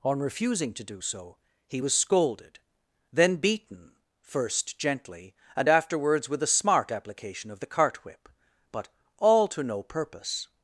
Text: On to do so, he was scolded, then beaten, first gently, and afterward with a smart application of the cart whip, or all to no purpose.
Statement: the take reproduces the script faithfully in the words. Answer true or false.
false